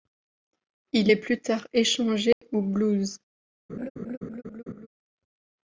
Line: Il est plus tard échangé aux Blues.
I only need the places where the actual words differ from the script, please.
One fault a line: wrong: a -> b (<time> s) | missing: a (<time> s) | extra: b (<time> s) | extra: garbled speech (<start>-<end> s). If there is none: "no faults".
no faults